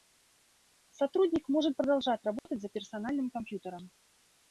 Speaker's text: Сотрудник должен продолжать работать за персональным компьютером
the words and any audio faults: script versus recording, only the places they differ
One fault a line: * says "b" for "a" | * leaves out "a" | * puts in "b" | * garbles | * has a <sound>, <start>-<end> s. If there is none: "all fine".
* says "может" for "должен"
* has a dropout, 2.4-2.5 s